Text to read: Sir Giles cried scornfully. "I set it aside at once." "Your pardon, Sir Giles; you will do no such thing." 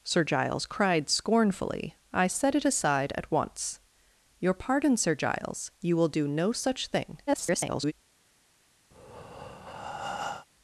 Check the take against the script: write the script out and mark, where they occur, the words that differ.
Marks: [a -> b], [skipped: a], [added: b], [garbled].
Sir Giles cried scornfully. "I set it aside at once." "Your pardon, Sir Giles; you will do no such thing." [garbled]